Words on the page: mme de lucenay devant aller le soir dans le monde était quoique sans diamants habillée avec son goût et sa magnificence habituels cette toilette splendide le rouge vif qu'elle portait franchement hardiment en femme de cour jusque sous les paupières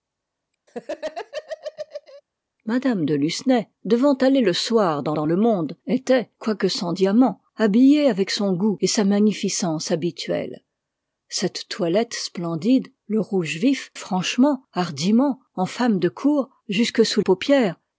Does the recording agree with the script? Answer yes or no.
no